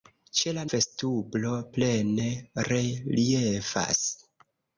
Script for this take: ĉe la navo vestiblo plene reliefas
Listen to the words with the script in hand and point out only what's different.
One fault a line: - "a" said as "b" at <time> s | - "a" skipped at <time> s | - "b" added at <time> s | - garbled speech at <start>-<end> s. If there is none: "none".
- "navo" skipped at 0.6 s